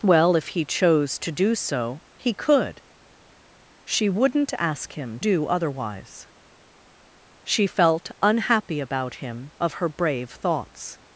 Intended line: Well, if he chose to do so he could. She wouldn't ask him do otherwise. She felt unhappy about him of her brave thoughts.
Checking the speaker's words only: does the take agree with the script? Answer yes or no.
yes